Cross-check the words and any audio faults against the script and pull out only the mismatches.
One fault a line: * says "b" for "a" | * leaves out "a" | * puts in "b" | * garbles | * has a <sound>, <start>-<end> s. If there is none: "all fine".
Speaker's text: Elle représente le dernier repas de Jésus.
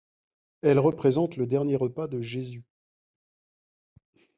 all fine